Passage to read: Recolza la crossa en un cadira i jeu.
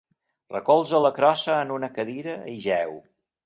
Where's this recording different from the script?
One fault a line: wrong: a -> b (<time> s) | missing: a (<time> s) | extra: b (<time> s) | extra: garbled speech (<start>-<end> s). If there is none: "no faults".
wrong: un -> una (1.8 s)